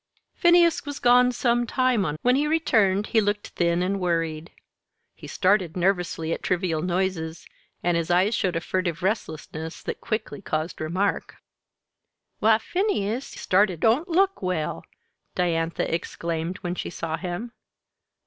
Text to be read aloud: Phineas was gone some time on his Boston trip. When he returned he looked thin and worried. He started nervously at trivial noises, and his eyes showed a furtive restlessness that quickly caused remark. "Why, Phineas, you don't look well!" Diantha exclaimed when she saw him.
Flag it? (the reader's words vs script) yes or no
yes